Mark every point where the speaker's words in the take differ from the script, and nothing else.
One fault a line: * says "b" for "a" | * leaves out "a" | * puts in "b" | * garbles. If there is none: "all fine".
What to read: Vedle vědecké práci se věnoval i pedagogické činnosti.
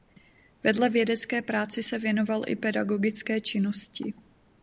all fine